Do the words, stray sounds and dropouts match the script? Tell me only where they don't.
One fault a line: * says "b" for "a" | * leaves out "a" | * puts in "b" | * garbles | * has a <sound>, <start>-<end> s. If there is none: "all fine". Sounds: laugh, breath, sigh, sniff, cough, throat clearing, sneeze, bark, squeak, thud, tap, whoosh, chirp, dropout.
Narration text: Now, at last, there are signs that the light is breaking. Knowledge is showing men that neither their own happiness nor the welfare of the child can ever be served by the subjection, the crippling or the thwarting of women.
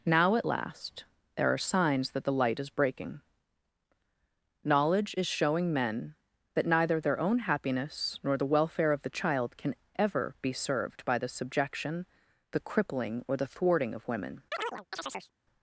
* has a chirp, 14.5-15.3 s